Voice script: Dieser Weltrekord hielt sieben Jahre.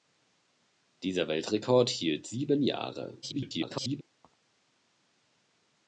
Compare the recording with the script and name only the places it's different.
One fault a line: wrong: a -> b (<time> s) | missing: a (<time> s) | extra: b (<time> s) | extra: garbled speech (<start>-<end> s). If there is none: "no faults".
extra: garbled speech (3.2-4.0 s)